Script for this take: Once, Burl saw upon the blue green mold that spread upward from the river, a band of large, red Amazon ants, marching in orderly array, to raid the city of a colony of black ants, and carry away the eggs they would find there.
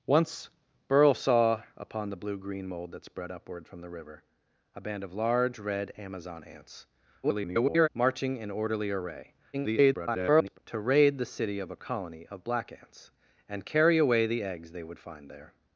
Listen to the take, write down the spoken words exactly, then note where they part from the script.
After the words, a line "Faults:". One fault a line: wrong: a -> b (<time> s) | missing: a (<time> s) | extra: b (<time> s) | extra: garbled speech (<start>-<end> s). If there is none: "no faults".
Once, Burl saw upon the blue green mold that spread upward from the river, a band of large, red Amazon ants, [garbled] marching in orderly array, [garbled] to raid the city of a colony of black ants, and carry away the eggs they would find there.
Faults:
extra: garbled speech (7.2-7.9 s)
extra: garbled speech (9.5-10.6 s)